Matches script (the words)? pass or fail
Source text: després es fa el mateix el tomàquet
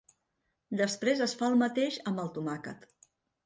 fail